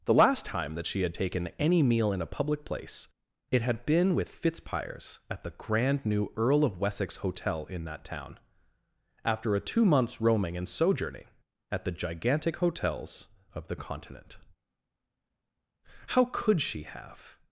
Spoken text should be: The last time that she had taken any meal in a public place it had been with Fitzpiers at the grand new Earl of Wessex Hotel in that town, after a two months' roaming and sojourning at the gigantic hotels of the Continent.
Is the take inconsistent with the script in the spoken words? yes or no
yes